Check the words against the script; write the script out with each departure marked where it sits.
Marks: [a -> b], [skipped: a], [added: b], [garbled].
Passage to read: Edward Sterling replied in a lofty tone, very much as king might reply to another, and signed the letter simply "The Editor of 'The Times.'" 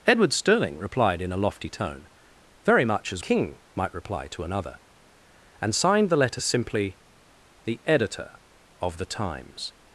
Edward Sterling replied in a lofty tone, very much as king might reply to another, and signed the letter simply "The Editor of 'The Times.'"